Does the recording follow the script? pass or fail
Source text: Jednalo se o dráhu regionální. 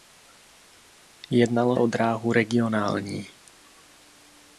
fail